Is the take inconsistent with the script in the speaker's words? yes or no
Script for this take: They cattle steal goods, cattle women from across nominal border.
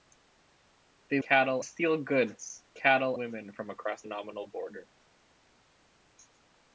no